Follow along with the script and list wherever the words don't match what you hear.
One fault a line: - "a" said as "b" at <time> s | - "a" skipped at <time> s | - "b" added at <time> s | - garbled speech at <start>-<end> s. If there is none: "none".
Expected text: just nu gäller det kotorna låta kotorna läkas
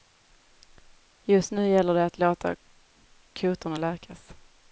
- "kotorna" said as "att" at 2.0 s